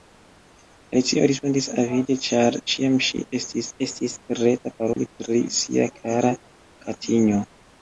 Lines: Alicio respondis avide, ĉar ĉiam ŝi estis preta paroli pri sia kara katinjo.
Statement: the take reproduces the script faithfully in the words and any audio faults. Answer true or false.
false